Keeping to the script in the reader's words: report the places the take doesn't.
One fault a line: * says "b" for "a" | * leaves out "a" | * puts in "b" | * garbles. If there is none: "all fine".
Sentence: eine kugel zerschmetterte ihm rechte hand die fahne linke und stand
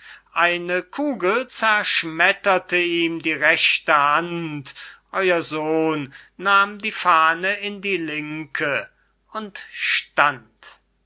* puts in "die"
* puts in "euer sohn nahm"
* puts in "in die"